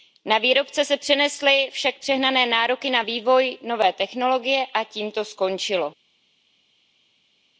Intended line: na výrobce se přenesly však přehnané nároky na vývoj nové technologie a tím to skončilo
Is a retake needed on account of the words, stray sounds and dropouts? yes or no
no